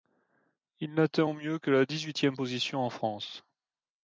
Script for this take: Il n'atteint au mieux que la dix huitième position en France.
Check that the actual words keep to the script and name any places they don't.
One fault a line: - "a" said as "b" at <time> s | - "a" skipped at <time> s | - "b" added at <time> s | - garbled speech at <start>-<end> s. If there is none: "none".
none